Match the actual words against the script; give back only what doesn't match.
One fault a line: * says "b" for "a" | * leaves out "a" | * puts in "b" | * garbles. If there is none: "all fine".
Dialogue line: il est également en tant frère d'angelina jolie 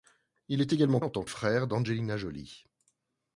all fine